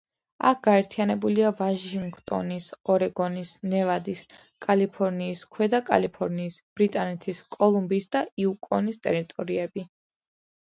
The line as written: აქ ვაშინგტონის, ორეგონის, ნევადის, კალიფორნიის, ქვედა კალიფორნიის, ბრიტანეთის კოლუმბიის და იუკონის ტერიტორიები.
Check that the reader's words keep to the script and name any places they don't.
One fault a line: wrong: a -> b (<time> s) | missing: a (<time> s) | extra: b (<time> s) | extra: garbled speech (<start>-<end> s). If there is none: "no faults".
extra: გაერთიანებულია (0.7 s)